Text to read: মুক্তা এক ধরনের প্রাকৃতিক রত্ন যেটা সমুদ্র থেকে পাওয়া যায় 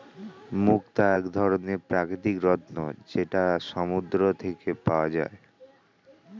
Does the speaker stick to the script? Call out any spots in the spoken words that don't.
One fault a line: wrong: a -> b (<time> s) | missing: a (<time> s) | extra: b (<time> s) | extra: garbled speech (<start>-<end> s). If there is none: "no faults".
no faults